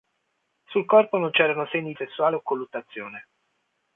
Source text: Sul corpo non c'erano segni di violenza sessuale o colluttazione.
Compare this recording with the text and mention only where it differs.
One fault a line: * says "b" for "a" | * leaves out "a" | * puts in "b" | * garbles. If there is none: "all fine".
* leaves out "di violenza"